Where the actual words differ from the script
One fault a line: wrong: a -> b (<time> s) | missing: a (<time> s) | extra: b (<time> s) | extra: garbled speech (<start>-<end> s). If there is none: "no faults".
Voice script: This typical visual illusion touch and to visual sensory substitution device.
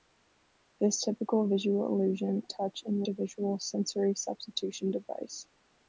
no faults